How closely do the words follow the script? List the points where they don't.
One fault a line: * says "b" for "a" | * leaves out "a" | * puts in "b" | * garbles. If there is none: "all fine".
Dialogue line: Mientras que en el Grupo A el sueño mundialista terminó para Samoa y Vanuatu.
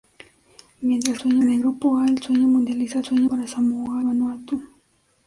* says "sueño" for "que"
* says "sueño" for "terminó"
* leaves out "y"